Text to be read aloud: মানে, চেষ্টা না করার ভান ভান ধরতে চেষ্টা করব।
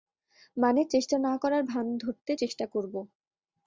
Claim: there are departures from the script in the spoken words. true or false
true